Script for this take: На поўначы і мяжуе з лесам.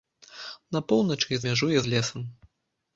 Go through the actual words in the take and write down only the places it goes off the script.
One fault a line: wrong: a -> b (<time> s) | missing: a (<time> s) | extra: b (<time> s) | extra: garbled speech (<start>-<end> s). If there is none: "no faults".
no faults